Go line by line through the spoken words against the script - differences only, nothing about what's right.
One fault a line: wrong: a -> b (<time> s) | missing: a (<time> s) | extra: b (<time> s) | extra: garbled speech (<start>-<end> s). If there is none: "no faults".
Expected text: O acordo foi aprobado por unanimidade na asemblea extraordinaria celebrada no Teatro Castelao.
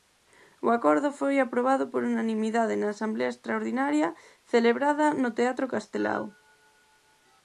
no faults